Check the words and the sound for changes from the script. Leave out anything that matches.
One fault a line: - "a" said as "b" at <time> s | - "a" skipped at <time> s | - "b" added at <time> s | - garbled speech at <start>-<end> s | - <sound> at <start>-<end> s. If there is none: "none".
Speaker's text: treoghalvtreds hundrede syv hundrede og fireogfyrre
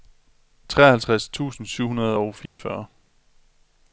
- "hundrede" said as "tusind" at 1.3 s
- dropout at 2.5-2.6 s